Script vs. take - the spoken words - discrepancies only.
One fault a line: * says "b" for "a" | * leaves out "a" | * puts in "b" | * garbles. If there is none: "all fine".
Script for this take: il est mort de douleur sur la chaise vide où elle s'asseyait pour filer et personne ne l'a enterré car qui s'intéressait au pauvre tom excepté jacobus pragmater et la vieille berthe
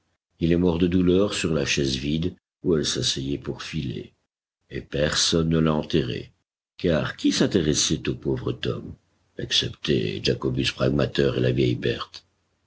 all fine